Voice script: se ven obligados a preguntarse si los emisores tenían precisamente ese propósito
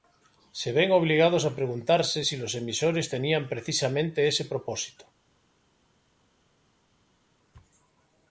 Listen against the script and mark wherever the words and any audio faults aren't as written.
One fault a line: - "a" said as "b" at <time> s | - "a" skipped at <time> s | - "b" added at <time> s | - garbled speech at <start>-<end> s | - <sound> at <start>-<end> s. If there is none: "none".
none